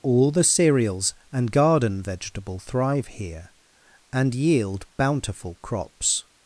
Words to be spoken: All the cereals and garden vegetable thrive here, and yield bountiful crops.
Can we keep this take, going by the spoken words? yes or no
yes